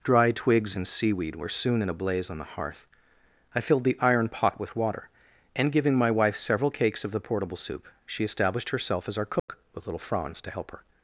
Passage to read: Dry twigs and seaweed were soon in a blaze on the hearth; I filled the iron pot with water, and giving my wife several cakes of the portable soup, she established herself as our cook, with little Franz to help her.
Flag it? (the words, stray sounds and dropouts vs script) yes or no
yes